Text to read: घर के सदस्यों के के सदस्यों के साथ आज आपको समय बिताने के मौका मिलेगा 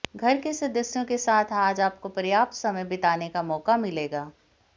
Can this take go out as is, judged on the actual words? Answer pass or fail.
fail